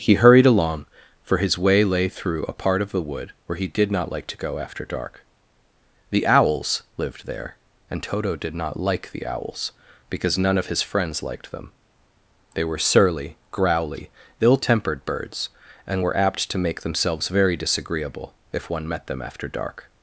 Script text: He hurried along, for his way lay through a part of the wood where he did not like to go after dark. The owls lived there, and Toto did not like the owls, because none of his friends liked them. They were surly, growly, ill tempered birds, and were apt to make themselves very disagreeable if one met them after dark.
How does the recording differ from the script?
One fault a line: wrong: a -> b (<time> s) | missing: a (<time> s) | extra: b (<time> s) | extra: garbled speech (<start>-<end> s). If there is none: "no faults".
no faults